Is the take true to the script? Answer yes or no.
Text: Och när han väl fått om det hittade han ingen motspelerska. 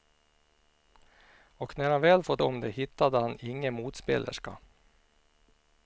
yes